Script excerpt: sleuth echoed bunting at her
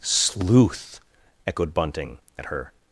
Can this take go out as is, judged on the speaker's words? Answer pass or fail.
pass